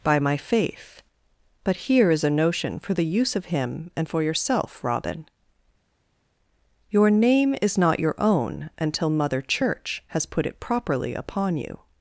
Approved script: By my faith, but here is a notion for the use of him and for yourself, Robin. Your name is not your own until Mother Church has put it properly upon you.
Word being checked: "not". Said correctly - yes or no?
yes